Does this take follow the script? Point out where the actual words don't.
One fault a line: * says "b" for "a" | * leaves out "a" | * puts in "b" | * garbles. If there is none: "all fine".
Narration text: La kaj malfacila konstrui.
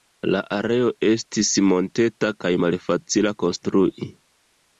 * puts in "areo estis monteta"